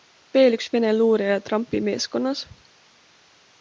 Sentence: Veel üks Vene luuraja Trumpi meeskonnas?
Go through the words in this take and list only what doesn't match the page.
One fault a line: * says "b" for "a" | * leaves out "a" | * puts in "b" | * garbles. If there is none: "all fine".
all fine